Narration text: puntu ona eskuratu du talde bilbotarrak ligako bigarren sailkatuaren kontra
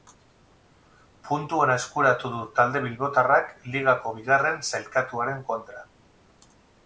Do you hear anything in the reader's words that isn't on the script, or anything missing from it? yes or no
no